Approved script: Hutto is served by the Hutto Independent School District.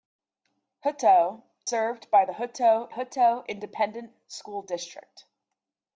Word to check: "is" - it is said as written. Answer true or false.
false